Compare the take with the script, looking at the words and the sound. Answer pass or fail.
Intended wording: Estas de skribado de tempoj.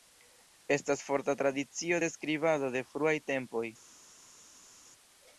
fail